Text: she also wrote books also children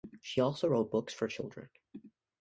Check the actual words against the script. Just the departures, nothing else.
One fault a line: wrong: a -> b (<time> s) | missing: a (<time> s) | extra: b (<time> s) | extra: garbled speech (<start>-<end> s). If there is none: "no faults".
wrong: also -> for (1.1 s)